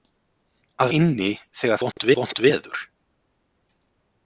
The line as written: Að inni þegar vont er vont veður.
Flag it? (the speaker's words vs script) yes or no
no